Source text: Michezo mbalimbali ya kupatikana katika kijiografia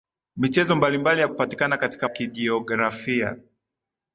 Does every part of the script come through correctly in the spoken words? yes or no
yes